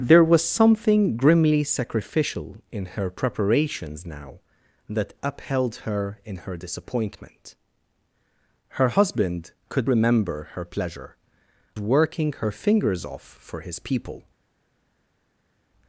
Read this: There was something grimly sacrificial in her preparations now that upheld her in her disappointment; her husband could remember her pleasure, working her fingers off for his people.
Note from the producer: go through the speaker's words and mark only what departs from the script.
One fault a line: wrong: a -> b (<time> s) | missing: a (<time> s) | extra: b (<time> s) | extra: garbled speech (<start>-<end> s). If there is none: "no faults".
no faults